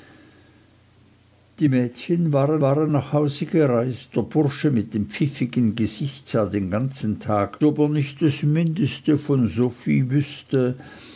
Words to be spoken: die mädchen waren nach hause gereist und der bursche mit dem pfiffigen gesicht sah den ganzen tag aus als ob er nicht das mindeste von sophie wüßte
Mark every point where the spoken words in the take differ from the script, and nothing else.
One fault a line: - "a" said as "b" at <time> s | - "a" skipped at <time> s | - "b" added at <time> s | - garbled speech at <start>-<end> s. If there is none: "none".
- "waren" added at 2.6 s
- "und" skipped at 4.2 s
- "aus als" skipped at 7.6 s